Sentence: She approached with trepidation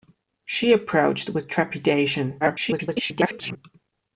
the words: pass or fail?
fail